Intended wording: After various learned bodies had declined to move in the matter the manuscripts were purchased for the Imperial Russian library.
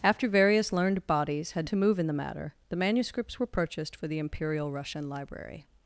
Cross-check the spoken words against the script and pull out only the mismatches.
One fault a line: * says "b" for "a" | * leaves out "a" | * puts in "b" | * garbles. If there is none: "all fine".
* leaves out "declined"